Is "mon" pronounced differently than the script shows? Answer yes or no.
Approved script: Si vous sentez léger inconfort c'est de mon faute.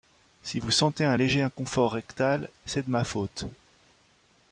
yes